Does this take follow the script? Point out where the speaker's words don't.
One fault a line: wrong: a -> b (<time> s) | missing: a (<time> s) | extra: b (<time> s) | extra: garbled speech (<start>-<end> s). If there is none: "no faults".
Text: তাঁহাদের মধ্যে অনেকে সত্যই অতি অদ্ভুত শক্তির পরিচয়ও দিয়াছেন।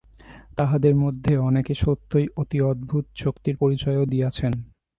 no faults